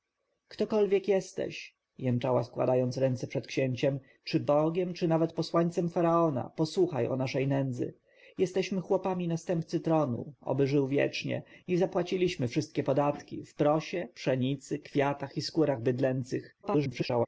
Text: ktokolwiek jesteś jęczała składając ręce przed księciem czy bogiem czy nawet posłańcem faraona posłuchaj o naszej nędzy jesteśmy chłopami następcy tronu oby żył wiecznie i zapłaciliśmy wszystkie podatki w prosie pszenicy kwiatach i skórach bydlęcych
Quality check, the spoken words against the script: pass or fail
fail